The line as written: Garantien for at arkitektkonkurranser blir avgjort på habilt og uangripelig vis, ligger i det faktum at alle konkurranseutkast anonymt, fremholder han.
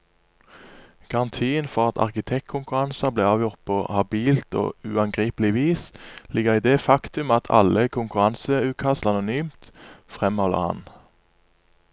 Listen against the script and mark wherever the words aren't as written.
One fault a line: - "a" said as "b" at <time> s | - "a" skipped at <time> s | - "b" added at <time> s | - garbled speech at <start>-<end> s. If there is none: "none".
none